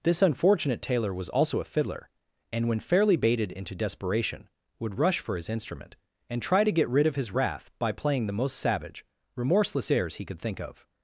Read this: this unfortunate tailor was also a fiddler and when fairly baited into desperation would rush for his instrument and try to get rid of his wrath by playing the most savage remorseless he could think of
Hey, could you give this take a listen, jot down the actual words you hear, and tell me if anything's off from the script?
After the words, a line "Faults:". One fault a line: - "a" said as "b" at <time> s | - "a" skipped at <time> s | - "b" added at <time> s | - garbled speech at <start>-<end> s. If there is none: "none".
this unfortunate tailor was also a fiddler and when fairly baited into desperation would rush for his instrument and try to get rid of his wrath by playing the most savage remorseless airs he could think of
Faults:
- "airs" added at 9.9 s